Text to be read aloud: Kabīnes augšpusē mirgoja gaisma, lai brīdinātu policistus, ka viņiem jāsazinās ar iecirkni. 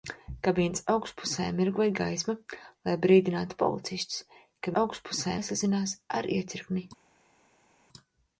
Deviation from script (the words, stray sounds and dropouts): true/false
true